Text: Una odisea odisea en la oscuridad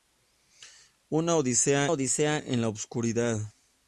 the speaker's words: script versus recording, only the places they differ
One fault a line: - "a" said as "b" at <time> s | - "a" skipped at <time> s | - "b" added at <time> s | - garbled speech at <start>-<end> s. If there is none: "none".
none